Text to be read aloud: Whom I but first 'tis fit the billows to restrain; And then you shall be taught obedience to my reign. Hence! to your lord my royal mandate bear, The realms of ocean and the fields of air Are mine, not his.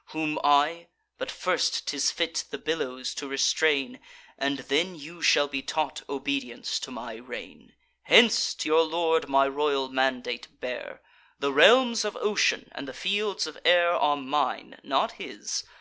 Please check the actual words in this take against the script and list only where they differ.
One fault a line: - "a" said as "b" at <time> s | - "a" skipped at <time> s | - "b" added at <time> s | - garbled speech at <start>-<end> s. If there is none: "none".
none